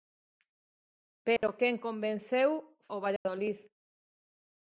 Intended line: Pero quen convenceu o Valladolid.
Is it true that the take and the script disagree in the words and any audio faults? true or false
true